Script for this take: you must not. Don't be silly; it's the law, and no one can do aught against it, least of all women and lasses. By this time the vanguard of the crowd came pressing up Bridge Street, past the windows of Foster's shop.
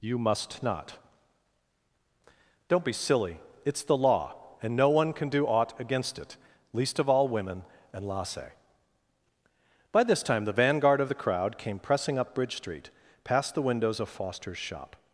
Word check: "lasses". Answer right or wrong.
wrong